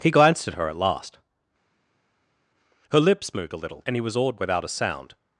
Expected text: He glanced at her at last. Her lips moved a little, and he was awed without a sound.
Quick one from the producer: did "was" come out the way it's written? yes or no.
yes